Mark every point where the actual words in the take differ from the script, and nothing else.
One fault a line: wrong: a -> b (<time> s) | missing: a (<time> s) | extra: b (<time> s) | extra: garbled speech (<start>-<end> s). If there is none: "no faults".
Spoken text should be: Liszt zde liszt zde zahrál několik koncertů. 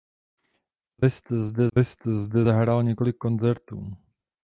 no faults